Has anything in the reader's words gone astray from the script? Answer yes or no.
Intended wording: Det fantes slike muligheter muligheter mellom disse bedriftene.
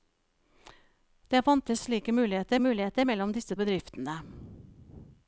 no